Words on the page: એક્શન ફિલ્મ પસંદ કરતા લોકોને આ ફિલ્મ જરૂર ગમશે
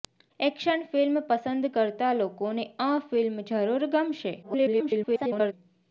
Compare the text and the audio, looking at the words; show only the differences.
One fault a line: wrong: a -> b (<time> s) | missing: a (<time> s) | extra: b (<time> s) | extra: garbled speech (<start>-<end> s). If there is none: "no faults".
extra: garbled speech (4.4-5.5 s)